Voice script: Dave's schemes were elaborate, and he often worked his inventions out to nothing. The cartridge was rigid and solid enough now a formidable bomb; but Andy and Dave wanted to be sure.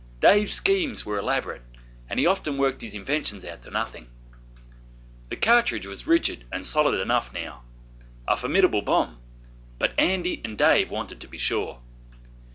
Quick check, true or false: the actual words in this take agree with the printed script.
true